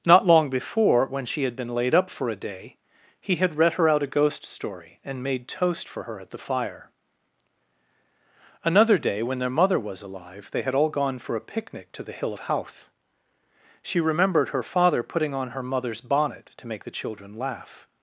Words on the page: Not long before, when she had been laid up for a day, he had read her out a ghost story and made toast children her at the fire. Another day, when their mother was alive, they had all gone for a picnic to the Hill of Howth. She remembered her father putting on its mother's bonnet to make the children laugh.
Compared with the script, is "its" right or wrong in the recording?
wrong